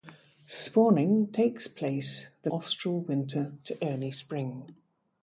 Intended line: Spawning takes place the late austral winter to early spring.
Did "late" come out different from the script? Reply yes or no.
yes